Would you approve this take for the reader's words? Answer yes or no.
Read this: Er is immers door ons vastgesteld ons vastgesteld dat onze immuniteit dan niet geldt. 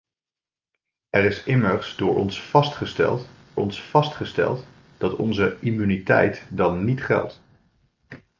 yes